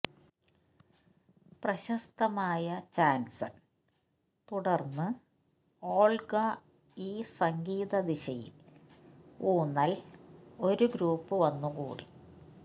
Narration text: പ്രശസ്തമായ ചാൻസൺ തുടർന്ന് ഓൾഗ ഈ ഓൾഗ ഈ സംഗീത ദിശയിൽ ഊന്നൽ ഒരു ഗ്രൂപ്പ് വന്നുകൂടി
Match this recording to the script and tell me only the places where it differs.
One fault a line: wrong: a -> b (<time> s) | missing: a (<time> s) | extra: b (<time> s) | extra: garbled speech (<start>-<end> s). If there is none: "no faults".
missing: ഓൾഗ ഈ (7.2 s)